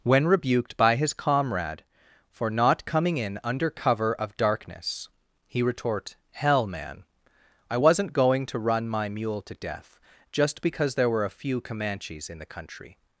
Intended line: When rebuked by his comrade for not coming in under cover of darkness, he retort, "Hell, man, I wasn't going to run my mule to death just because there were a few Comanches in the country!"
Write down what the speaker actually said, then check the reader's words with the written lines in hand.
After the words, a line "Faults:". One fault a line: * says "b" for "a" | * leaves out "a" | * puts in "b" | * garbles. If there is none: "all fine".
When rebuked by his comrade for not coming in under cover of darkness, he retort, "Hell, man, I wasn't going to run my mule to death just because there were a few Comanches in the country!"
Faults:
all fine